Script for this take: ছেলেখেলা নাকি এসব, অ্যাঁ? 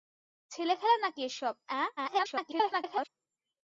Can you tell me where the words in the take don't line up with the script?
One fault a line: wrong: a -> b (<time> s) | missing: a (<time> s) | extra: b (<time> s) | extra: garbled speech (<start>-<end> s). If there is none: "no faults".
extra: garbled speech (2.0-3.1 s)